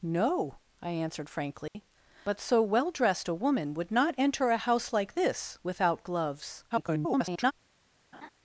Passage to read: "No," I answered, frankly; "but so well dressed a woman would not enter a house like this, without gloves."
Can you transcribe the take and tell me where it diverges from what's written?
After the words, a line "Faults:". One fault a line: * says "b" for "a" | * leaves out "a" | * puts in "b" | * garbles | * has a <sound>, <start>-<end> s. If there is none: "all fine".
"No," I answered, frankly; "but so well dressed a woman would not enter a house like this, without gloves." [garbled]
Faults:
* has a dropout, 1.7-1.7 s
* garbles
* has a laugh, 8.1-8.3 s